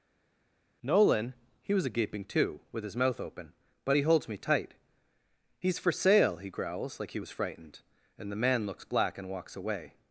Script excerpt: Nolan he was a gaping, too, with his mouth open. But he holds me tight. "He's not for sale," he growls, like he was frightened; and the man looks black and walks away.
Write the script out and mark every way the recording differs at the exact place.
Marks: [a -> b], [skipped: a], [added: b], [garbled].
Nolan he was a gaping, too, with his mouth open. But he holds me tight. "He's [skipped: not] for sale," he growls, like he was frightened; and the man looks black and walks away.